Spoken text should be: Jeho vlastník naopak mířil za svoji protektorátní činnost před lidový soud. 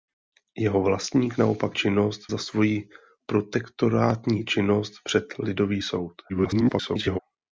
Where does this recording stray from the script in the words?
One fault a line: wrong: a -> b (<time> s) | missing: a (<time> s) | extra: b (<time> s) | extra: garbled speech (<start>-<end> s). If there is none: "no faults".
wrong: mířil -> činnost (1.7 s)
extra: garbled speech (6.3-7.2 s)